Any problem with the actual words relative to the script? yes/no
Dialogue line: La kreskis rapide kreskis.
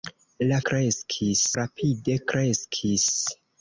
no